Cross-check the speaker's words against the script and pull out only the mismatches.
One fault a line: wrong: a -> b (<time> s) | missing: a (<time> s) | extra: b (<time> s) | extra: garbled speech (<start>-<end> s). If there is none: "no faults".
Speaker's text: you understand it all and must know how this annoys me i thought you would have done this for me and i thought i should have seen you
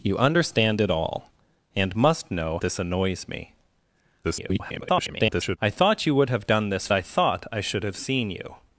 missing: how (2.6 s)
extra: garbled speech (4.2-5.6 s)
missing: for me and (6.9 s)